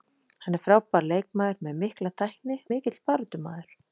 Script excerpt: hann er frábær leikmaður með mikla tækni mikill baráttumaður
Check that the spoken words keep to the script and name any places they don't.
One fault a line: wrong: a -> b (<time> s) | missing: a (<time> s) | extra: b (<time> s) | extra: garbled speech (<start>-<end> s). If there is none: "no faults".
no faults